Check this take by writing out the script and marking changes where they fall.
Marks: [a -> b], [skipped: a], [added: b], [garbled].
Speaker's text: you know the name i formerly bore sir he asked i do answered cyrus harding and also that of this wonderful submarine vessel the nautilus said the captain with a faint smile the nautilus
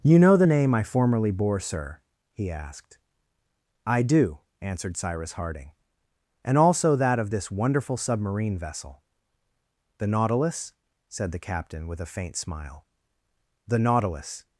you know the name i formerly bore sir he asked i do answered cyrus harding and also that of this wonderful submarine vessel the nautilus said the captain with a faint smile the nautilus